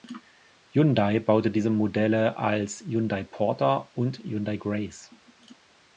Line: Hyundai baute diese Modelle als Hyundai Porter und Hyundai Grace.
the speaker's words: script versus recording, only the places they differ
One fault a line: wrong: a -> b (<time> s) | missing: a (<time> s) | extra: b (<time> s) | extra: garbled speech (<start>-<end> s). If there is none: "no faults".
no faults